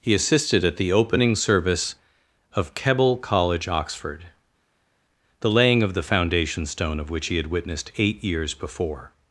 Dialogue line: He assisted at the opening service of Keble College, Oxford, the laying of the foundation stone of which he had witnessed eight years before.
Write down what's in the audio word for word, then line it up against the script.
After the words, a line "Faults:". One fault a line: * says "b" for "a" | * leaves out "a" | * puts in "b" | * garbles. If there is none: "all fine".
He assisted at the opening service of Keble College, Oxford, the laying of the foundation stone of which he had witnessed eight years before.
Faults:
all fine